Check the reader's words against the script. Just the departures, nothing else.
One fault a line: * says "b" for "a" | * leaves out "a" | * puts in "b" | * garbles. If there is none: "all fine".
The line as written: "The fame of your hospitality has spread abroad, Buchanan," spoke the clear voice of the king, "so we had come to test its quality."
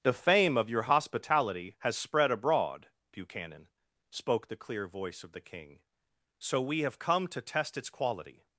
* says "have" for "had"